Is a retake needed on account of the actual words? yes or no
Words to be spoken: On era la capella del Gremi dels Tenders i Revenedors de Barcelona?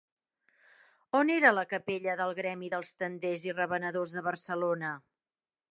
no